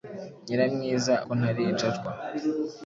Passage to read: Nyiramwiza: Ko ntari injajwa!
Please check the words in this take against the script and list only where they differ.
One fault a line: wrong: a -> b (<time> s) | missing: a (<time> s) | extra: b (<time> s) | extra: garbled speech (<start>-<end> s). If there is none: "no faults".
no faults